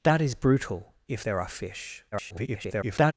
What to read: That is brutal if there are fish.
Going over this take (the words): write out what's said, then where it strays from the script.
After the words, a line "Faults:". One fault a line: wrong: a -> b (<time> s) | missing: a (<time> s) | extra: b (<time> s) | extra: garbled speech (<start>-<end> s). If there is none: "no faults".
That is brutal if there are fish. [garbled]
Faults:
extra: garbled speech (2.1-3.1 s)